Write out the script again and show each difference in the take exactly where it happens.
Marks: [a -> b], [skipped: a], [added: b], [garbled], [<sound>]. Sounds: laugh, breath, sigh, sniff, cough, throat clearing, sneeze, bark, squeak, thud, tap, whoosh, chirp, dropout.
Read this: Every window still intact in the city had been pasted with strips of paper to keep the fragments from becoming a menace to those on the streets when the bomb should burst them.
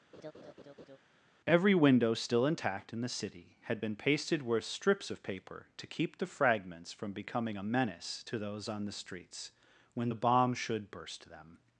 [laugh] Every window still intact in the city had been pasted with strips of paper to keep the fragments from becoming a menace to those on the streets when the bomb should burst them.